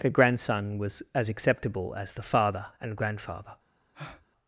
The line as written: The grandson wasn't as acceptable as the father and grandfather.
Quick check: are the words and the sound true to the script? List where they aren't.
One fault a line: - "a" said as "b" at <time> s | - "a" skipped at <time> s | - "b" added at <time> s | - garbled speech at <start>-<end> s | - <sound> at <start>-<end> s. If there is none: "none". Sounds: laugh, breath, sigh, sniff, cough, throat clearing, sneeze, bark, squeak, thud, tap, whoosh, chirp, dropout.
- "wasn't" said as "was" at 0.8 s
- breath at 3.9-4.3 s